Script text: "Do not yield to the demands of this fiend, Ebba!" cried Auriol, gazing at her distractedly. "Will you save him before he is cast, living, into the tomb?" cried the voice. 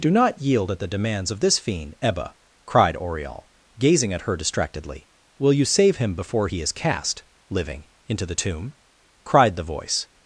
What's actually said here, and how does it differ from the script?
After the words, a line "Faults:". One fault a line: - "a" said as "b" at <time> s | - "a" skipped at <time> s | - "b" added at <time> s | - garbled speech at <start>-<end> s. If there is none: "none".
"Do not yield at the demands of this fiend, Ebba!" cried Auriol, gazing at her distractedly. "Will you save him before he is cast, living, into the tomb?" cried the voice.
Faults:
- "to" said as "at" at 0.7 s